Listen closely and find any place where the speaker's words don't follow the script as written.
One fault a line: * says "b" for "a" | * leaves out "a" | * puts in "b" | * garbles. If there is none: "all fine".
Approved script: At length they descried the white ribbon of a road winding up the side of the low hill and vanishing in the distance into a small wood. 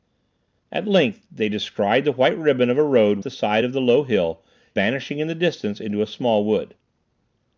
* leaves out "winding up"
* leaves out "and"